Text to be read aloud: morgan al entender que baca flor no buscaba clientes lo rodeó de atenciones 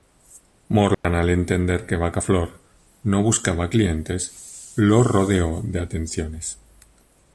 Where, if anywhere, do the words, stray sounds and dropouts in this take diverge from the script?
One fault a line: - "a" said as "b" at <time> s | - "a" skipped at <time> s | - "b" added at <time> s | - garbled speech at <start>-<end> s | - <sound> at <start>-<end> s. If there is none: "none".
- dropout at 0.9-1.0 s